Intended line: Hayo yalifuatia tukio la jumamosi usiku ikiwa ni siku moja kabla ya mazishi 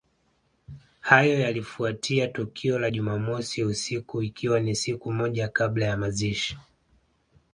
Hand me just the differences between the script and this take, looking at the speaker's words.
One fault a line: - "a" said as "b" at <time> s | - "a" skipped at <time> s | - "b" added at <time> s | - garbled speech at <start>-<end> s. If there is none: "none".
none